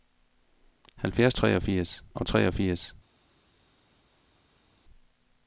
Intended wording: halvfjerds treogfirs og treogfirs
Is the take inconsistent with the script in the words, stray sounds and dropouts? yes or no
no